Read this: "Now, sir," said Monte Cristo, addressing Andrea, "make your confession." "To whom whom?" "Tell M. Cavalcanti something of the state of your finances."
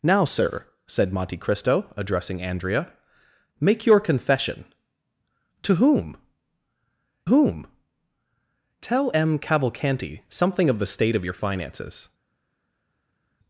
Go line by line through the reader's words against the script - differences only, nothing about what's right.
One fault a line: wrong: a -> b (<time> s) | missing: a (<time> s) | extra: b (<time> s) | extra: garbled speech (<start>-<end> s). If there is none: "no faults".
no faults